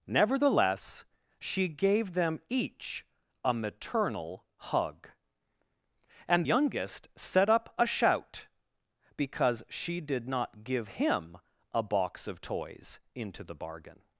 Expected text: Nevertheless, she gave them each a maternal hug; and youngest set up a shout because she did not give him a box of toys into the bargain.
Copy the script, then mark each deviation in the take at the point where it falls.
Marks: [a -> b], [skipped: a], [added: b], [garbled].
Nevertheless, she gave them each a maternal hug; and youngest set up a shout because she did not give him a box of toys into the bargain.